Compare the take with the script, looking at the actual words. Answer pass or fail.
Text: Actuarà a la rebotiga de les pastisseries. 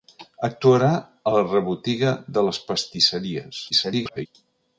fail